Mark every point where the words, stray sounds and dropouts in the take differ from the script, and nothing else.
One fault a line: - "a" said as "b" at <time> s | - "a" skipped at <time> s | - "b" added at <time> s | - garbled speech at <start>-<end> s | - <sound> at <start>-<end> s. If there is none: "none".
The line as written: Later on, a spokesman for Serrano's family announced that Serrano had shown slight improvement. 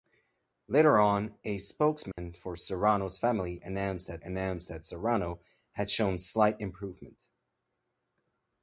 - dropout at 2.1-2.2 s
- "announced that" added at 4.2 s